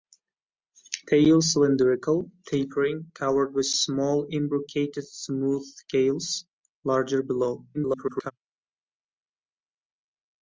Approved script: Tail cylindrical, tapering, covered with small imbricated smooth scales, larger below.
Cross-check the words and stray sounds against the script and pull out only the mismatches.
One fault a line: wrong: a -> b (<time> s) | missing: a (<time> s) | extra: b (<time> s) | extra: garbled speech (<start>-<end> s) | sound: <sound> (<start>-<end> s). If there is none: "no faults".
extra: garbled speech (7.7-8.3 s)